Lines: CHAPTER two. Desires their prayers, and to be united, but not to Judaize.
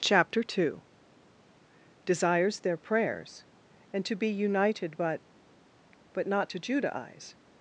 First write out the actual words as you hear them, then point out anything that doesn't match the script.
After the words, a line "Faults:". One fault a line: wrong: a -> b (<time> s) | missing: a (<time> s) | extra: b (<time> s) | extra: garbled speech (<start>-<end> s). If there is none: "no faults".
CHAPTER two. Desires their prayers, and to be united, but but not to Judaize.
Faults:
extra: but (6.1 s)